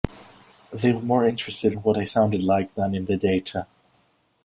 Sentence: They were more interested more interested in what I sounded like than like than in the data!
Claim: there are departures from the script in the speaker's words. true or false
true